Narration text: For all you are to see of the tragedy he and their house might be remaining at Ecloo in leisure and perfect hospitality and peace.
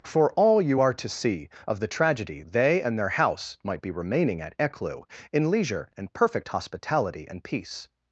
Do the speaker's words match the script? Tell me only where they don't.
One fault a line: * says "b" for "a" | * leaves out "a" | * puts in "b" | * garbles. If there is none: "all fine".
* says "they" for "he"